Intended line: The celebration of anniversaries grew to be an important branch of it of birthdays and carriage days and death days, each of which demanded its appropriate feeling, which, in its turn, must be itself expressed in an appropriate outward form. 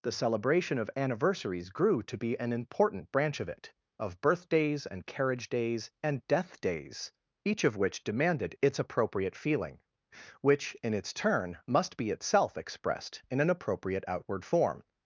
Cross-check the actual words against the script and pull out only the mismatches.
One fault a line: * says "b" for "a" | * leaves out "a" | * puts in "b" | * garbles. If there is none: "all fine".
all fine